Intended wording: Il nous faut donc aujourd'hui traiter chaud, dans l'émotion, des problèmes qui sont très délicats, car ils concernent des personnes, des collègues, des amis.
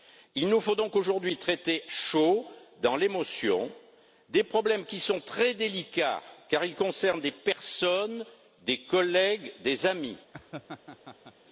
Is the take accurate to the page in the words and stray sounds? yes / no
no